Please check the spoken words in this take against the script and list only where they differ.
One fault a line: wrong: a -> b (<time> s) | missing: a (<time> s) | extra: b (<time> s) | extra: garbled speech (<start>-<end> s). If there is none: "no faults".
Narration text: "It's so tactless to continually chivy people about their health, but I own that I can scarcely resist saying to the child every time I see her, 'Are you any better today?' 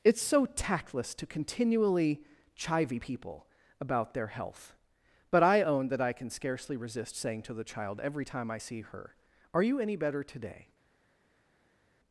no faults